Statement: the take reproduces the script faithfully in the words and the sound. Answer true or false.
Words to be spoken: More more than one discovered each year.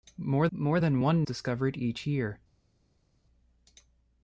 true